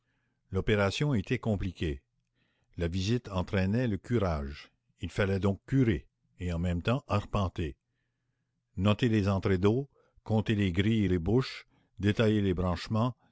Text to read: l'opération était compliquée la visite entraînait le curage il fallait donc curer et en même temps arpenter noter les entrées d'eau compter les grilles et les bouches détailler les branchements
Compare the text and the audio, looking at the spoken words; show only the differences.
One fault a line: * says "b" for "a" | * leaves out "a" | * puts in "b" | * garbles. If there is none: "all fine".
all fine